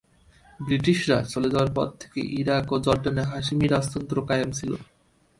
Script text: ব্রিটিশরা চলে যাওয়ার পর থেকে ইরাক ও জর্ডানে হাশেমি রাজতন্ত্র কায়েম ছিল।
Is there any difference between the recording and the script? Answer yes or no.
no